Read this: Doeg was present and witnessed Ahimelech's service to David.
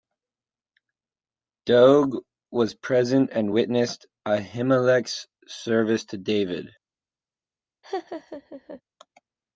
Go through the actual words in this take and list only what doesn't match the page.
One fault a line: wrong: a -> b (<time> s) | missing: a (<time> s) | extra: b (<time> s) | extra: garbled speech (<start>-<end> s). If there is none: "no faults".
no faults